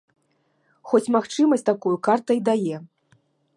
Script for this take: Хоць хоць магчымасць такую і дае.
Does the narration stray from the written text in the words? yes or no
yes